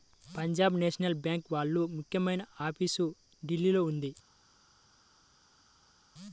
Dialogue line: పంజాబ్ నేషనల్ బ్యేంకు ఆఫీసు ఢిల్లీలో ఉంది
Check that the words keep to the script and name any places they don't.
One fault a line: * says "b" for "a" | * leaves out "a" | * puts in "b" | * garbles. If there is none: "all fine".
* puts in "వాళ్ళ ముఖ్యమైన"